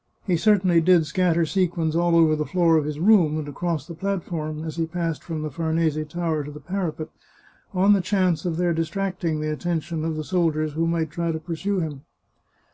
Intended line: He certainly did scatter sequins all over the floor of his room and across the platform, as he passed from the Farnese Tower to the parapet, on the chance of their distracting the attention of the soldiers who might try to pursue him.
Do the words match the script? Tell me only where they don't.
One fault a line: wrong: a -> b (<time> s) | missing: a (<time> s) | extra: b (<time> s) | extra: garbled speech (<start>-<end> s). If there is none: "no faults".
no faults